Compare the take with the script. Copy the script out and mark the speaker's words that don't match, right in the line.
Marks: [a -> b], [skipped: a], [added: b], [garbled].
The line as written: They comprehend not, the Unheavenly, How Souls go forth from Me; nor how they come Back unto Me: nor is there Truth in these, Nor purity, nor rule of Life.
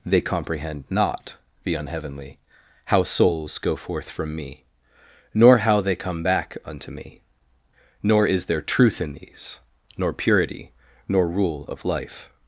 They comprehend not, the Unheavenly, How Souls go forth from Me; nor how they come Back unto Me: nor is there Truth in these, Nor purity, nor rule of Life.